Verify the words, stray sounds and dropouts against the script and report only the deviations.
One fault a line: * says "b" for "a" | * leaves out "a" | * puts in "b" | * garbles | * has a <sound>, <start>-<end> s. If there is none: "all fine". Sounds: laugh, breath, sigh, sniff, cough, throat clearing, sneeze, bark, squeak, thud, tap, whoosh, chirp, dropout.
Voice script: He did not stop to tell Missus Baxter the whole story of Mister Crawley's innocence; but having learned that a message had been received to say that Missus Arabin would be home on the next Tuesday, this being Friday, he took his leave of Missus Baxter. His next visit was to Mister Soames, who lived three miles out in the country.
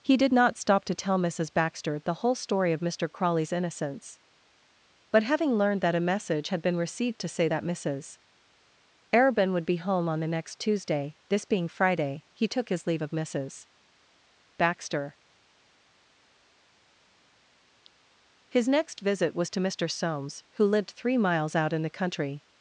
all fine